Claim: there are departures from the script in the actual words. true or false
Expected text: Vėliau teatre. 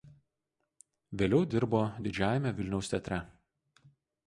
true